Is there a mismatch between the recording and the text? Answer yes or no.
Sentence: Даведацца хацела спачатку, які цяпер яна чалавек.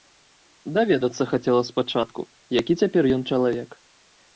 yes